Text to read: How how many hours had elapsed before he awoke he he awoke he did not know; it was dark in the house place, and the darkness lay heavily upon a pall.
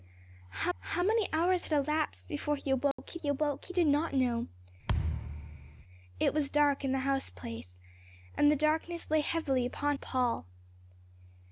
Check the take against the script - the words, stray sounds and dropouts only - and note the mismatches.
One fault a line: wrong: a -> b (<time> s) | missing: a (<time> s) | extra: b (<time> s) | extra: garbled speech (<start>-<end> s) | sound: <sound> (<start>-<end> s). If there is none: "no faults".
sound: dropout (2.9-3.0 s)
sound: thud (4.9-5.8 s)